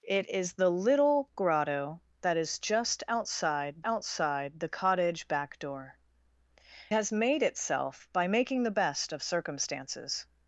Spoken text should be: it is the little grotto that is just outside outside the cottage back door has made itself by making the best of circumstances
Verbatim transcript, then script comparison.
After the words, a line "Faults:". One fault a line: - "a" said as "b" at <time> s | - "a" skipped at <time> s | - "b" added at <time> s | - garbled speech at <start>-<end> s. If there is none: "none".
it is the little grotto that is just outside outside the cottage back door has made itself by making the best of circumstances
Faults:
none